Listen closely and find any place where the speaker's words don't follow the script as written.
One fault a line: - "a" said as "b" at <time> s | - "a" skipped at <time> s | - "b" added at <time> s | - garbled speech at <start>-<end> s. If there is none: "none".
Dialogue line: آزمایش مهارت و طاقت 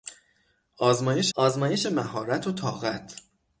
- "آزمایش" added at 1.3 s